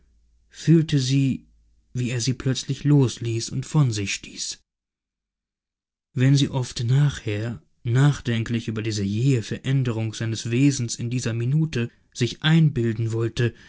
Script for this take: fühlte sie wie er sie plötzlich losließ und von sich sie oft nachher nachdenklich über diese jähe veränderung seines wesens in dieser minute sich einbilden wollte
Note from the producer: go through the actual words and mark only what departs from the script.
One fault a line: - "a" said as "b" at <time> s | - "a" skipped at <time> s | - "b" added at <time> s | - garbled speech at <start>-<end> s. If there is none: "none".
- "stieß wenn" added at 4.1 s